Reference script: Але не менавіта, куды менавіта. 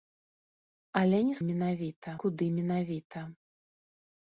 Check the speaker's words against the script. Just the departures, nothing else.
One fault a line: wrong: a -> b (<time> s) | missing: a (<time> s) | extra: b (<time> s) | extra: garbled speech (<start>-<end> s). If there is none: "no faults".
no faults